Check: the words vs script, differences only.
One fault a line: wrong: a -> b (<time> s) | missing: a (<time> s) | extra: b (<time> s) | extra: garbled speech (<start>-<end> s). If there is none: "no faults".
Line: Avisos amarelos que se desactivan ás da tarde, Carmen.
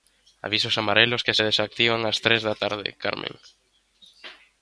extra: tres (2.3 s)